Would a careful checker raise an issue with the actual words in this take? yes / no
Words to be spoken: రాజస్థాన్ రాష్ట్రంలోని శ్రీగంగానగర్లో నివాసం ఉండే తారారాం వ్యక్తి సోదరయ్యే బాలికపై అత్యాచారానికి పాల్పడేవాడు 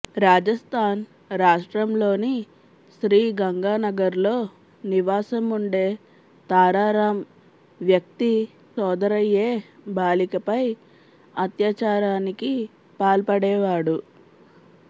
no